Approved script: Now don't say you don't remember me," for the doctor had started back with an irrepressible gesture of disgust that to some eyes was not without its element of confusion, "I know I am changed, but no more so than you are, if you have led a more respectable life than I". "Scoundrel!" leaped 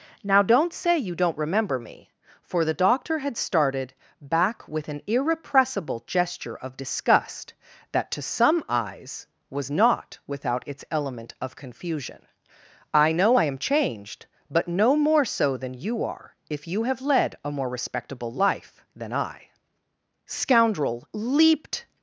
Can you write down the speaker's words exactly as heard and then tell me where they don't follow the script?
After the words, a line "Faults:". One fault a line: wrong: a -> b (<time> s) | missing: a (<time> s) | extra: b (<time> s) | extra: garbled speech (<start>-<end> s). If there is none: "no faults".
Now don't say you don't remember me," for the doctor had started back with an irrepressible gesture of disgust that to some eyes was not without its element of confusion, "I know I am changed, but no more so than you are, if you have led a more respectable life than I". "Scoundrel!" leaped
Faults:
no faults